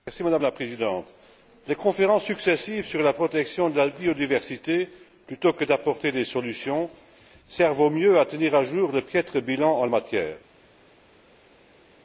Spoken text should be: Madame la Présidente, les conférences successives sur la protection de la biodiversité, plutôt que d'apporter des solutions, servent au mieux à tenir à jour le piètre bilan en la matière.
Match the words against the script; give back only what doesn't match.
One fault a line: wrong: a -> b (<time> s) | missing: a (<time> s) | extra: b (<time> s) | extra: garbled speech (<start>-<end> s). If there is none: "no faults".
missing: la (9.9 s)